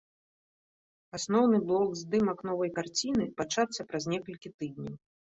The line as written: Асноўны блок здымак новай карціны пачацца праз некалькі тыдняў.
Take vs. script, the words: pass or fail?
pass